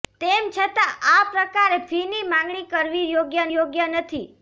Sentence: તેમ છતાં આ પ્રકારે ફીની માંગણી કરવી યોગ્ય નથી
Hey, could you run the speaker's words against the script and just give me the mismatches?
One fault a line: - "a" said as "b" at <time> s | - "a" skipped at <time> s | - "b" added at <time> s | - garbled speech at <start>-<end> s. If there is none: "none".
- "યોગ્ય" added at 3.5 s